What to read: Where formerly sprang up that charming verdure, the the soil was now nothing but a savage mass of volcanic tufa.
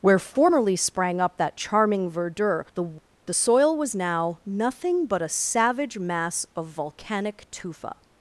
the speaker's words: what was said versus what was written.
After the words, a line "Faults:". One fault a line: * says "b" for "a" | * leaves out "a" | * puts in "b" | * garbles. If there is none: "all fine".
Where formerly sprang up that charming verdure, the the soil was now nothing but a savage mass of volcanic tufa.
Faults:
all fine